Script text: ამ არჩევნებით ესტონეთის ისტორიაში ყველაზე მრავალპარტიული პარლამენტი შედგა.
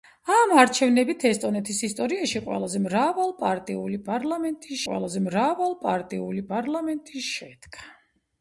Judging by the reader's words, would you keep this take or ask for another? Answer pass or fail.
fail